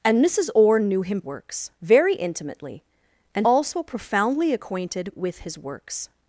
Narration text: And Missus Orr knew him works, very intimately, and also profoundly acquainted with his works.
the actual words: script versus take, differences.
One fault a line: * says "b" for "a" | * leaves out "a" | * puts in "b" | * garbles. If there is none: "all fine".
all fine